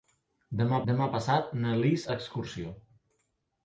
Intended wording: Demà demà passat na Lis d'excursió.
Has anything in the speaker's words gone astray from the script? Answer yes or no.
no